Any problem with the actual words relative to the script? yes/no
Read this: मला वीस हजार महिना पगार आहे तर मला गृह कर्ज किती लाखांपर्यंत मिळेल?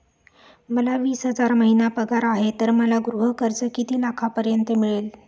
no